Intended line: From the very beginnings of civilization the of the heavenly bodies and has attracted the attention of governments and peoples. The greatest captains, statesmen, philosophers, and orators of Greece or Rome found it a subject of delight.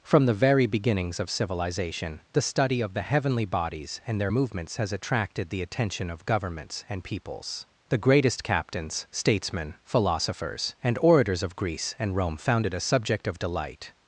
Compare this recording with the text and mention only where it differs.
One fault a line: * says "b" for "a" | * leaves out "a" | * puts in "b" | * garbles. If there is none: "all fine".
* puts in "study"
* puts in "their movements"
* says "and" for "or"